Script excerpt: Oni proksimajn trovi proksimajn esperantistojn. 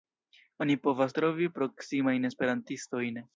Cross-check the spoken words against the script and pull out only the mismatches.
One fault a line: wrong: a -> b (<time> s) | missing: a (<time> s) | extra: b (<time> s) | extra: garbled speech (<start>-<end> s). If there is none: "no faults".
wrong: proksimajn -> povas (0.9 s)